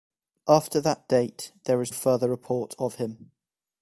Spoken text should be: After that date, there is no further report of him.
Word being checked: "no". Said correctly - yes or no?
no